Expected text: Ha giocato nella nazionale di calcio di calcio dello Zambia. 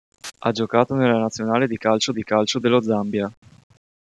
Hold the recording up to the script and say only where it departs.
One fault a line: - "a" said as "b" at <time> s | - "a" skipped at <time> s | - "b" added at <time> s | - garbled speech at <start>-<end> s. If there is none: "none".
none